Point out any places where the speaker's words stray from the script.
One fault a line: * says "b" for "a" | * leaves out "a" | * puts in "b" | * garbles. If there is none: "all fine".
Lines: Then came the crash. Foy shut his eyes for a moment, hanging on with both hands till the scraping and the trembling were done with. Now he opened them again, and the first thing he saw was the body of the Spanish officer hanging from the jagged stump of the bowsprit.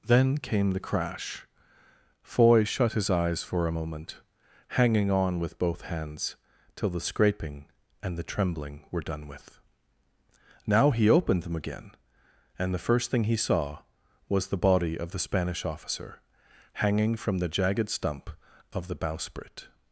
all fine